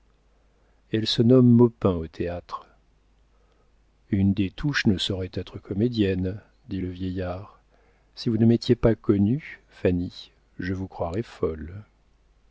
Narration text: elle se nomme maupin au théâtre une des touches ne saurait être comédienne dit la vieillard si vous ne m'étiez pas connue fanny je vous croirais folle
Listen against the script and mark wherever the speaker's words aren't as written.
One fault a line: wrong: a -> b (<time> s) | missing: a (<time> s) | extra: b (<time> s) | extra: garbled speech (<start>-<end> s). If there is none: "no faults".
wrong: la -> le (6.8 s)